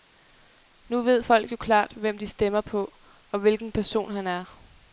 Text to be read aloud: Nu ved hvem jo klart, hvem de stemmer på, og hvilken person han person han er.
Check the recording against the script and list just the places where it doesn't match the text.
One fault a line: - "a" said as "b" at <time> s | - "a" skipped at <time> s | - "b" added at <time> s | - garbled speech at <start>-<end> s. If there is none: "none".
- "hvem" said as "folk" at 1.2 s
- "person han" skipped at 4.3 s